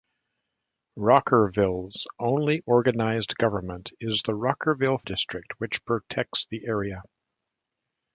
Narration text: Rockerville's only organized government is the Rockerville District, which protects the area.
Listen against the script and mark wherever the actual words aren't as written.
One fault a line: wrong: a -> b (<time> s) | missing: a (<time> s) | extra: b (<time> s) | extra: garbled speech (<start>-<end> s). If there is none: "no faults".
no faults